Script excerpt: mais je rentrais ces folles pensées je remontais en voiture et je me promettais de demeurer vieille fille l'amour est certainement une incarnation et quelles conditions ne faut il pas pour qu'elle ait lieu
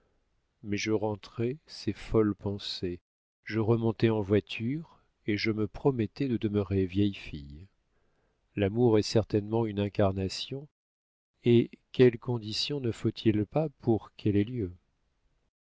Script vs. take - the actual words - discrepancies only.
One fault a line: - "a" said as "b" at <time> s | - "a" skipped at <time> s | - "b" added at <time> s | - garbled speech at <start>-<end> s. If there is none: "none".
none